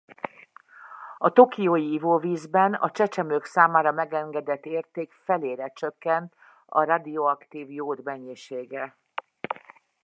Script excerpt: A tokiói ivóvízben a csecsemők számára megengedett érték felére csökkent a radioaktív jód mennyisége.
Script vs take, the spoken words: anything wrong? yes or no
no